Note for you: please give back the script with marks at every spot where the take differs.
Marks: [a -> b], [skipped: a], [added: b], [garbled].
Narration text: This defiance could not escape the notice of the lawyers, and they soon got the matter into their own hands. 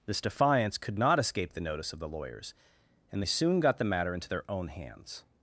This defiance could not escape the notice of the lawyers, and they soon got the matter into their own hands.